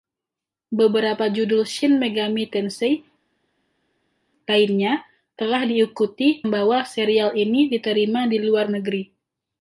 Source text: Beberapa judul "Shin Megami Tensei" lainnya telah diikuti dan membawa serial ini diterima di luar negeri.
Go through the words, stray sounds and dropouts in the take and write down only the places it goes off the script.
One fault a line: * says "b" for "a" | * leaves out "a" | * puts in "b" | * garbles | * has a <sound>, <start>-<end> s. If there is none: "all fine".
* leaves out "dan"